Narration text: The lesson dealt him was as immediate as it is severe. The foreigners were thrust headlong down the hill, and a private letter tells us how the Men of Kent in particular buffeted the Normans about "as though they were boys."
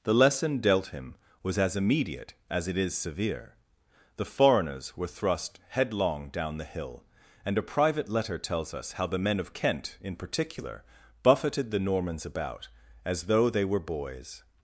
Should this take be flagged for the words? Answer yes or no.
no